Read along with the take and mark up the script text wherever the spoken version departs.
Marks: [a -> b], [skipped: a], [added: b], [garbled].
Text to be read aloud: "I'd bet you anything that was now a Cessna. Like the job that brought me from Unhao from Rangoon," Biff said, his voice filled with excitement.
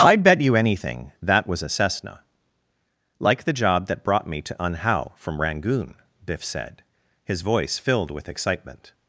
"I'd bet you anything that was [skipped: now] a Cessna. Like the job that brought me [from -> to] Unhao from Rangoon," Biff said, his voice filled with excitement.